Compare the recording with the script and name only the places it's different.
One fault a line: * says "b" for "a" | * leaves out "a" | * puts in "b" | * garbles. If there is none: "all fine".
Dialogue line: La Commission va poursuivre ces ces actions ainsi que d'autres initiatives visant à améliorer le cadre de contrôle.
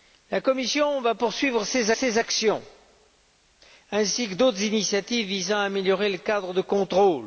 all fine